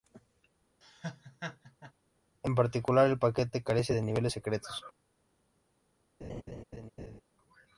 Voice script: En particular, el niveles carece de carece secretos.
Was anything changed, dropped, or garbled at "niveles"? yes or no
yes